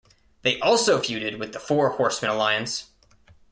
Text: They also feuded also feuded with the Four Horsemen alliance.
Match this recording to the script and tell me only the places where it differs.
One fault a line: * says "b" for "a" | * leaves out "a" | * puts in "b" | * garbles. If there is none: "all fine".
* leaves out "also feuded"